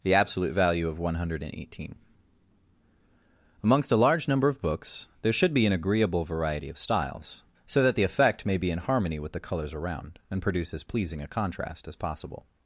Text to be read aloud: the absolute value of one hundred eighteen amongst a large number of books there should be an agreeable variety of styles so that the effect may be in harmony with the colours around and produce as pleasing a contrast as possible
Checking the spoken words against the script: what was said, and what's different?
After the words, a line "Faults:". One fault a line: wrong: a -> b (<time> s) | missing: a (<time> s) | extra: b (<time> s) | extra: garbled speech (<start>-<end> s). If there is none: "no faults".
the absolute value of one hundred eighteen amongst a large number of books there should be an agreeable variety of styles so that the effect may be in harmony with the colours around and produce as pleasing a contrast as possible
Faults:
no faults